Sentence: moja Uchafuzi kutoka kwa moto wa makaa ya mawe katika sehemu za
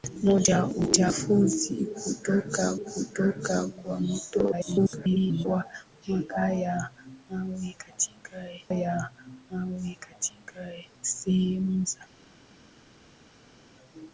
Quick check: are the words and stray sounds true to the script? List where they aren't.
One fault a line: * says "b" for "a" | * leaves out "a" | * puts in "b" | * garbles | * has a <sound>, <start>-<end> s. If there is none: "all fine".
* puts in "kutoka"
* garbles
* puts in "ya mawe katika"